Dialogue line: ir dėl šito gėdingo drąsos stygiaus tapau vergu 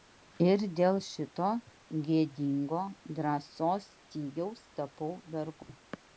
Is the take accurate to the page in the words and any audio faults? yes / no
no